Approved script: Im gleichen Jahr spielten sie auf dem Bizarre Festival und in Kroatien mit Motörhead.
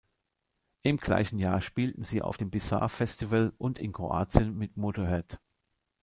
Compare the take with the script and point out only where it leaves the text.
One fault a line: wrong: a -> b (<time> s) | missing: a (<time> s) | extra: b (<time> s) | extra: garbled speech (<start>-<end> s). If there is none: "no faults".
no faults